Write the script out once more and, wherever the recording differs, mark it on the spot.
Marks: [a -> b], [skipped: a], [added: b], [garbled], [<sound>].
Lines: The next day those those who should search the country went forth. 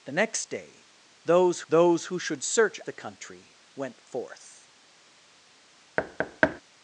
The next day those those who should search the country went forth. [thud]